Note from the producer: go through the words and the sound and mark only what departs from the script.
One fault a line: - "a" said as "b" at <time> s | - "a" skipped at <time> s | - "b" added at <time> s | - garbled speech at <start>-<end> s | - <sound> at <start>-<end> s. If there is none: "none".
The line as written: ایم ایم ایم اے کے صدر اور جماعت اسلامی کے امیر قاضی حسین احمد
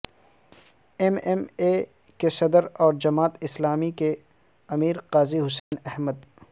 - "ایم" skipped at 1.4 s
- dropout at 5.6-5.7 s